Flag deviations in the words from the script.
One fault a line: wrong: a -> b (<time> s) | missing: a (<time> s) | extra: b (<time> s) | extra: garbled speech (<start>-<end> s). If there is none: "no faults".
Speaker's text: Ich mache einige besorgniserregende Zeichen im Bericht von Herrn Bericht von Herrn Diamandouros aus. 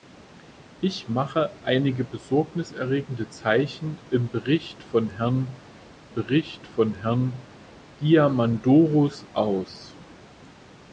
no faults